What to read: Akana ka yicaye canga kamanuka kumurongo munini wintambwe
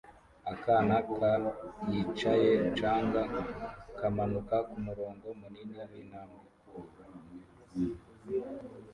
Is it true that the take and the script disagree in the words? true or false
false